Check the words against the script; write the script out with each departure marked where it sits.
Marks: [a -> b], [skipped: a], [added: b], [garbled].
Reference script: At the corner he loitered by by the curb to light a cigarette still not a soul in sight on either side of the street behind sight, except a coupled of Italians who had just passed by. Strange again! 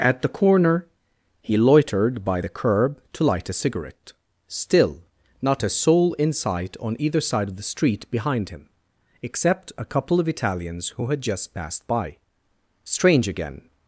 At the corner he loitered by [skipped: by] the curb to light a cigarette still not a soul in sight on either side of the street behind [sight, -> him] except a [coupled -> couple] of Italians who had just passed by. Strange again!